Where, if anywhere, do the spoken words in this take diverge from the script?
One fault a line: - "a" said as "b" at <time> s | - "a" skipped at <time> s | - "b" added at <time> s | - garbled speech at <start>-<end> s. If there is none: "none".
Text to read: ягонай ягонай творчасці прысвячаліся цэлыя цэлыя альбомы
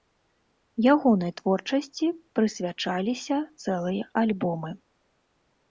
- "ягонай" skipped at 1.3 s
- "цэлыя" skipped at 4.0 s